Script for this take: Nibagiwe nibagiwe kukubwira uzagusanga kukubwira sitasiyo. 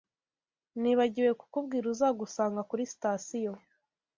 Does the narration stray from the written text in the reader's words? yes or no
yes